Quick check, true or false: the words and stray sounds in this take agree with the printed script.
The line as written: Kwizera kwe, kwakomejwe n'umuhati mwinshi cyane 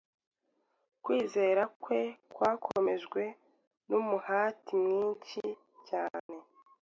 false